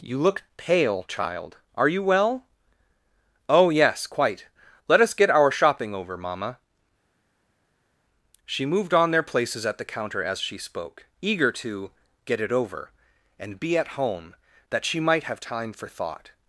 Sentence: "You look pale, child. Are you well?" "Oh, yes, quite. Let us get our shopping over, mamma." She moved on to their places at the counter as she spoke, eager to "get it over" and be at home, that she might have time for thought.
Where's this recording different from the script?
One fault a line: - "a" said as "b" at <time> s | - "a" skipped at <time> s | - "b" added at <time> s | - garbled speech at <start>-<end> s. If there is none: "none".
- "to" skipped at 9.1 s